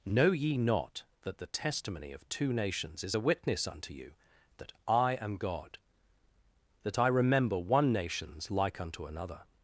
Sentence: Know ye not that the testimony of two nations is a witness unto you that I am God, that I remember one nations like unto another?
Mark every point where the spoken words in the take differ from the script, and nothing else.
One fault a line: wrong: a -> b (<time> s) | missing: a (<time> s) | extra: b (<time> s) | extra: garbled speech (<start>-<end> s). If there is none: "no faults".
no faults